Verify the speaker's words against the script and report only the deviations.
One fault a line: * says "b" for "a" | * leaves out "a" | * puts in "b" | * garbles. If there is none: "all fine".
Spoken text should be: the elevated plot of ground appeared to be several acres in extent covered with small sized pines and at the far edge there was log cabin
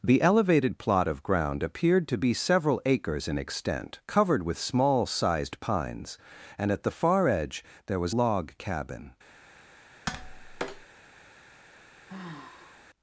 all fine